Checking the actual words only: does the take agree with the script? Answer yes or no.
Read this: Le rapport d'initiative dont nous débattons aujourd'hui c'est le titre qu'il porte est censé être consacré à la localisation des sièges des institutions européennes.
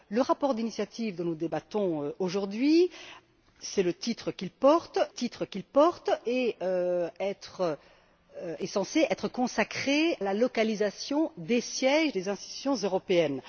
no